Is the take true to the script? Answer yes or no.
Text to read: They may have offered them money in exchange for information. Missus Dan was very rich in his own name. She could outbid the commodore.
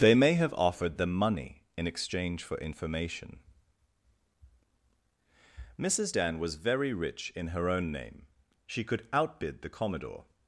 no